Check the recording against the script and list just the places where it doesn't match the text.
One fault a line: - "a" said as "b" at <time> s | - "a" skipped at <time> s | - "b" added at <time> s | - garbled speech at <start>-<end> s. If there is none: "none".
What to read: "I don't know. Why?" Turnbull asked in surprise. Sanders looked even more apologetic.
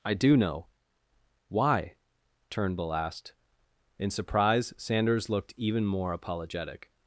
- "don't" said as "do" at 0.1 s